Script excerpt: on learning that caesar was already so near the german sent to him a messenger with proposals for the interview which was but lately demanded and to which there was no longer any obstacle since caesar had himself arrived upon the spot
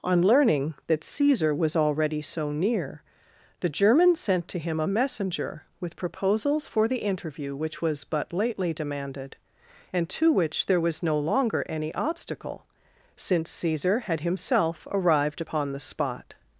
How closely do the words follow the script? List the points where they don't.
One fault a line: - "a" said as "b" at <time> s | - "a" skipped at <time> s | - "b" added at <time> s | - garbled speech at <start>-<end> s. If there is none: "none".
none